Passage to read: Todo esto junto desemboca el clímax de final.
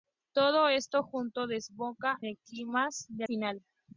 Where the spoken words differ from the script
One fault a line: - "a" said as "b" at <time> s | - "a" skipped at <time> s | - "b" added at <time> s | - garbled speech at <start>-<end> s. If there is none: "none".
none